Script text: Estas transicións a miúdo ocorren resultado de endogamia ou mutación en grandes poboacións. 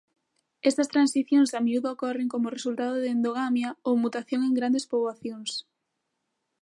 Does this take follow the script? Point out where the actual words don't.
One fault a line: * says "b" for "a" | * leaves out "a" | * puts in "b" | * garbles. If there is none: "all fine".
* puts in "como"